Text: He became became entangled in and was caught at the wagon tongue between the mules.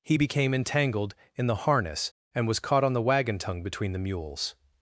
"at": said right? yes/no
no